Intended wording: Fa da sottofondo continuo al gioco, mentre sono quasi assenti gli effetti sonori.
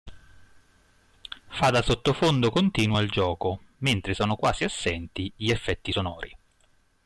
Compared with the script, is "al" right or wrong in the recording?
right